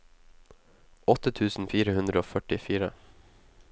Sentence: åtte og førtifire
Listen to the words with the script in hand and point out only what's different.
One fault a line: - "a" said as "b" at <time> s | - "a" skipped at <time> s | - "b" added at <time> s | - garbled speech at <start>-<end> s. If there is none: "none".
- "tusen fire hundre" added at 1.4 s